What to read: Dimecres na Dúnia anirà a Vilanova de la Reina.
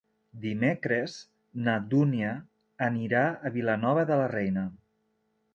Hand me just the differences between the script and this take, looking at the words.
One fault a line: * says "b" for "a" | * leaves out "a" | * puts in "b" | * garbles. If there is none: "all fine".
all fine